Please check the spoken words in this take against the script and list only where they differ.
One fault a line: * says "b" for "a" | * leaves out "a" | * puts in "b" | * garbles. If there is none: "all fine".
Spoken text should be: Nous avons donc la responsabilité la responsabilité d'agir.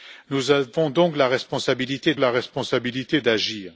all fine